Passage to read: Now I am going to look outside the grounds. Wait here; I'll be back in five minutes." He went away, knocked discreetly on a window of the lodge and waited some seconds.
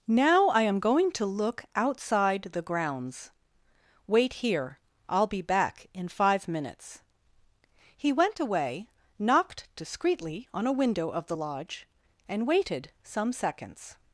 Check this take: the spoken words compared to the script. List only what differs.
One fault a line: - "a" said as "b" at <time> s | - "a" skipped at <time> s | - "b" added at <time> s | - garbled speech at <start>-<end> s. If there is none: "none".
none